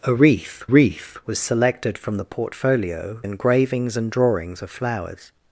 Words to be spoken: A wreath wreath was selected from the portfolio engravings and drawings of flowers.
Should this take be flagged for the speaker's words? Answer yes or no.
no